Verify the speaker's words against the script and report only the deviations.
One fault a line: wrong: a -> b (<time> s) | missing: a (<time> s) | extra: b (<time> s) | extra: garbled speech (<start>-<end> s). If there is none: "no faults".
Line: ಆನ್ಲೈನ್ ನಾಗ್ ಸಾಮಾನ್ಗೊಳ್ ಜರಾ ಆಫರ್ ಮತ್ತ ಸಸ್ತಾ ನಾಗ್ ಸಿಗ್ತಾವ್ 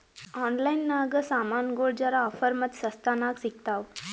no faults